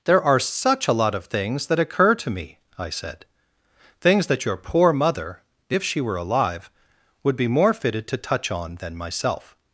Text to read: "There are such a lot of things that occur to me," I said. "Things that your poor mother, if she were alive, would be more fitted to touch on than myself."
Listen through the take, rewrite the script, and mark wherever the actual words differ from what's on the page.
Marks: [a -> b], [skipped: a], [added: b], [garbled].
"There are such a lot of things that occur to me," I said. "Things that your poor mother, if she were alive, would be more fitted to touch on than myself."